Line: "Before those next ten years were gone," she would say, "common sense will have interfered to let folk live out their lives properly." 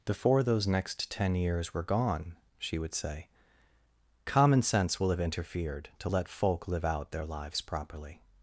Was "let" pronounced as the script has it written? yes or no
yes